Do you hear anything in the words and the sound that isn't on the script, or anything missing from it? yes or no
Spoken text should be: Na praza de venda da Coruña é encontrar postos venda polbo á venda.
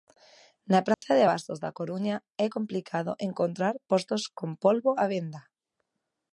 yes